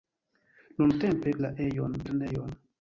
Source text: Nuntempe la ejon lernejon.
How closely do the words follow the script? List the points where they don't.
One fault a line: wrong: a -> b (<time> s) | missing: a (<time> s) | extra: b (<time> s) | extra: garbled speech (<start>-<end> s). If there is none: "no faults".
no faults